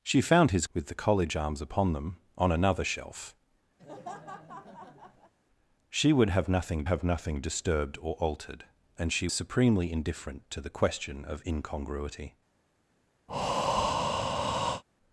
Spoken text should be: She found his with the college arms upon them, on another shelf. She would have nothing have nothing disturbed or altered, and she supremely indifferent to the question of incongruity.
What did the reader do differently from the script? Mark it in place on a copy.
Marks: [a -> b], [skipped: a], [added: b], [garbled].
She found his with the college arms upon them, on another shelf. She would have nothing have nothing disturbed or altered, and she supremely indifferent to the question of incongruity.